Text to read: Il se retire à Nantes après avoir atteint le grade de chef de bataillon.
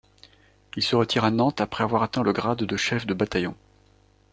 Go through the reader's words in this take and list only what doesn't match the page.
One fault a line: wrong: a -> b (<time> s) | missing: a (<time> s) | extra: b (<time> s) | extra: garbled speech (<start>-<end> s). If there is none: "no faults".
no faults